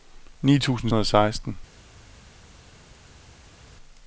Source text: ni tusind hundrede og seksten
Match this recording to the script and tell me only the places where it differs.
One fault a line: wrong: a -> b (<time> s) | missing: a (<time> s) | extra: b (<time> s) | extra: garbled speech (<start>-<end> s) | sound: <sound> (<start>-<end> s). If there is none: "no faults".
no faults